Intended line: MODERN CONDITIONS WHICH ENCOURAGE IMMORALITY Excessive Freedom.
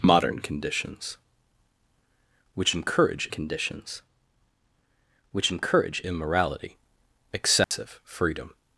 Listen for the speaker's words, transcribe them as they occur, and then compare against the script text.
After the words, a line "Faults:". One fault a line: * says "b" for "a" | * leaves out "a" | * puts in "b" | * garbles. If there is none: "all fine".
MODERN CONDITIONS WHICH ENCOURAGE CONDITIONS WHICH ENCOURAGE IMMORALITY Excessive Freedom.
Faults:
* puts in "CONDITIONS WHICH ENCOURAGE"